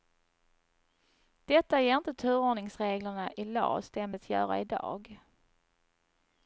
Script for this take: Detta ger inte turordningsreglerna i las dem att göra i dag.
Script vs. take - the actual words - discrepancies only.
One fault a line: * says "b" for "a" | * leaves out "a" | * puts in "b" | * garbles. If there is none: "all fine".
all fine